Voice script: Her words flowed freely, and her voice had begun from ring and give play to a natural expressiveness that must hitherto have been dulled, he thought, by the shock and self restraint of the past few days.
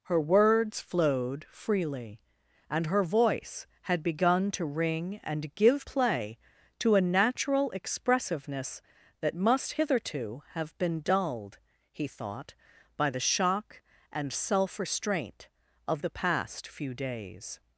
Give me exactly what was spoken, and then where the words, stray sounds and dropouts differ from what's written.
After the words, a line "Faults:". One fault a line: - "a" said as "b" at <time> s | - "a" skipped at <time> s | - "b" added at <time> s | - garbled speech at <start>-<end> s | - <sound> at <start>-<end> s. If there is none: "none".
Her words flowed freely, and her voice had begun to ring and give play to a natural expressiveness that must hitherto have been dulled, he thought, by the shock and self restraint of the past few days.
Faults:
- "from" said as "to" at 4.5 s